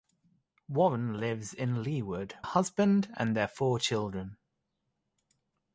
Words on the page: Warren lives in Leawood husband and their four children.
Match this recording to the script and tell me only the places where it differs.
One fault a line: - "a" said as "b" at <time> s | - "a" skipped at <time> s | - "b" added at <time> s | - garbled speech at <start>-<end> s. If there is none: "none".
none